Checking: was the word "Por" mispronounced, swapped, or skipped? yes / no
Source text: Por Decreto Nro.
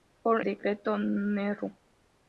no